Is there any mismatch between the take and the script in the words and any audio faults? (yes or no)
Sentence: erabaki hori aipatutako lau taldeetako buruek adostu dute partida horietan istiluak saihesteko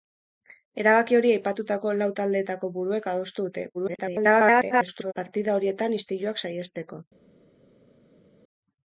yes